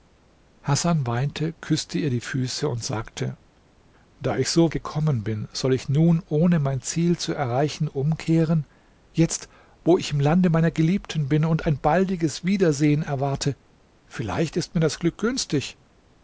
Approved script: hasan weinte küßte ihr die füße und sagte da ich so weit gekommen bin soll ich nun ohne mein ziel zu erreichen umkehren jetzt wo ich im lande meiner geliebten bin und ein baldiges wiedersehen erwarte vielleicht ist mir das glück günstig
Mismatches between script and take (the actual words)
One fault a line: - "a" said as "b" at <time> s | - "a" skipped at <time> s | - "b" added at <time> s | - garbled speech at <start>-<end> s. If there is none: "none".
- "weit" skipped at 4.7 s